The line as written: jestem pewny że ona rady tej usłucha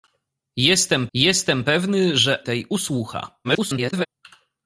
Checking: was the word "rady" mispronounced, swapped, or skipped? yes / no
yes